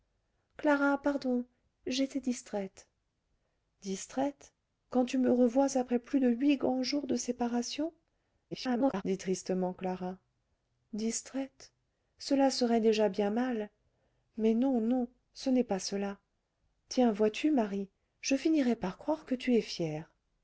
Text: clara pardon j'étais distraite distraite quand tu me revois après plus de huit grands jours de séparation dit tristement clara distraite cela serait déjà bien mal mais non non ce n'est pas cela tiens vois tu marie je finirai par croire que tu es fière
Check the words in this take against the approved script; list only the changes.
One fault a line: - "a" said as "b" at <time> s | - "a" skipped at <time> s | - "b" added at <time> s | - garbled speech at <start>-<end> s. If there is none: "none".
- garbled speech at 8.5-9.0 s